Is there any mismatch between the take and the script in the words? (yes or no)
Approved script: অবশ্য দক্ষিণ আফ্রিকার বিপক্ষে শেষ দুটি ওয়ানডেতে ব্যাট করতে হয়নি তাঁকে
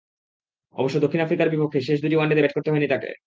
no